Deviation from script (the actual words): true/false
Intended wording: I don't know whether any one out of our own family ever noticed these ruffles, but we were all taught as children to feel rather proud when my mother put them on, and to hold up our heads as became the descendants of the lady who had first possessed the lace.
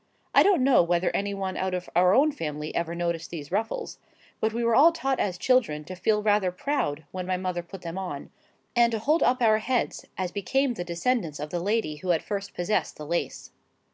false